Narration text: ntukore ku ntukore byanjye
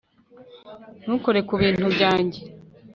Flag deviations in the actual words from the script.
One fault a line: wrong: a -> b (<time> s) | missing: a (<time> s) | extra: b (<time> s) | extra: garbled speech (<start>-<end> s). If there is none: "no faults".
wrong: ntukore -> bintu (1.6 s)